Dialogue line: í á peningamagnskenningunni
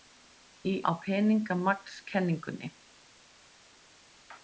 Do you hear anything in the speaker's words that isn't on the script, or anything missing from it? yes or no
no